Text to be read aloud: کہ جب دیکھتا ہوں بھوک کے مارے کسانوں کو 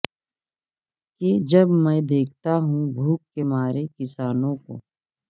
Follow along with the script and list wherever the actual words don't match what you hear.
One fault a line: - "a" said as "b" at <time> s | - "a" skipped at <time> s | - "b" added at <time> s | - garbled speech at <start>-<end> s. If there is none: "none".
- "میں" added at 1.8 s